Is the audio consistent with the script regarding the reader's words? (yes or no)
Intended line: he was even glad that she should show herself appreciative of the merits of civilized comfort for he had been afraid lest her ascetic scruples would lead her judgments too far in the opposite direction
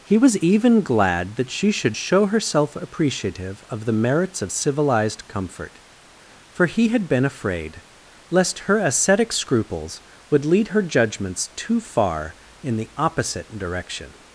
yes